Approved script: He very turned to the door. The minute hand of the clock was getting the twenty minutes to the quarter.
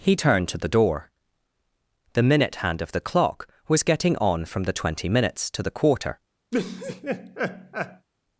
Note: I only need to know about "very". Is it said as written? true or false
false